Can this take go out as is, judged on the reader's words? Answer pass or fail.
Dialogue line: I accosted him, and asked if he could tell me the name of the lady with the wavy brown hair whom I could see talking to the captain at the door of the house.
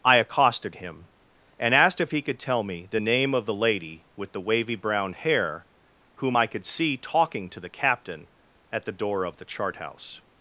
fail